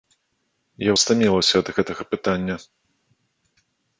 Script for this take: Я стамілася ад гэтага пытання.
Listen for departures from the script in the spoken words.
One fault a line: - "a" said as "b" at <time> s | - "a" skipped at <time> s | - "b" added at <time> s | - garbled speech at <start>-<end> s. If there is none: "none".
none